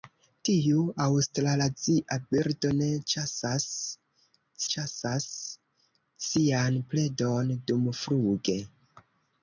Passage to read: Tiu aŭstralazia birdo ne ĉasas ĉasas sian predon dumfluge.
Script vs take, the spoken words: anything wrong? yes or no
no